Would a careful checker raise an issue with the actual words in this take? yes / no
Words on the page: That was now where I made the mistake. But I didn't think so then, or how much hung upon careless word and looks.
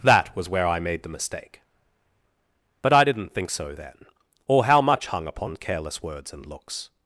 yes